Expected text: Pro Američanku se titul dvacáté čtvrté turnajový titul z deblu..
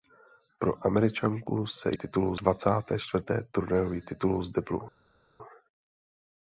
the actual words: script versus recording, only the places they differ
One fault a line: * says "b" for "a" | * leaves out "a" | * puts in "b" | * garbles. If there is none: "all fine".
all fine